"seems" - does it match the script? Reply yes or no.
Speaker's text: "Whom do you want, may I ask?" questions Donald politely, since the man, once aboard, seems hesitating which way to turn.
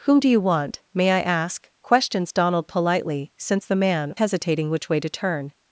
no